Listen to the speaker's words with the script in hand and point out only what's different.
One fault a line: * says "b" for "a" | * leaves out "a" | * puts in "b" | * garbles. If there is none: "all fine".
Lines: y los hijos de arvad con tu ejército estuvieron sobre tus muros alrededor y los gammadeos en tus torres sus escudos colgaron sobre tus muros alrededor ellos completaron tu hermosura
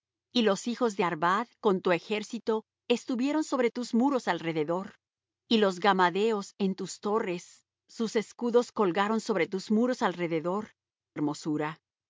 * leaves out "ellos completaron tu"